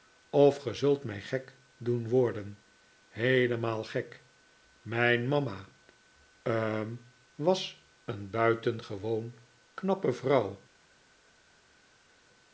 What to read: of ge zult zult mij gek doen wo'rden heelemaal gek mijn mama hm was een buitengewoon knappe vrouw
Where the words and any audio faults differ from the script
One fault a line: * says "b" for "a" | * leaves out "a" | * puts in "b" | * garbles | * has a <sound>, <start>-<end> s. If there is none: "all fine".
* leaves out "zult"